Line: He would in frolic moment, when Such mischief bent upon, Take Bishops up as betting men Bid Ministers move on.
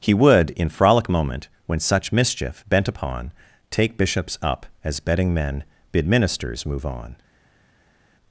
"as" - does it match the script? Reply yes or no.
yes